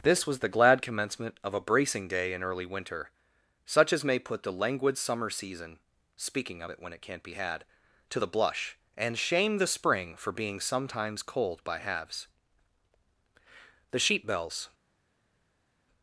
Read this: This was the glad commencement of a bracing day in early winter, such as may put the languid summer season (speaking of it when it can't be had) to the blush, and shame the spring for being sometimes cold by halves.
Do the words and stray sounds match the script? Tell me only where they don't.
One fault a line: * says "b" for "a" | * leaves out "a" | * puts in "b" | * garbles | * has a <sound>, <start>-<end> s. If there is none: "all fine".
* puts in "The sheep bells"